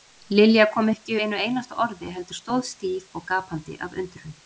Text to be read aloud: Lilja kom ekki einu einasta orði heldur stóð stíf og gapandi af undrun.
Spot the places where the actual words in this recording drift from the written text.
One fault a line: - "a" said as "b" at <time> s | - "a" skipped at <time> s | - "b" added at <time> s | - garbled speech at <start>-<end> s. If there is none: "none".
none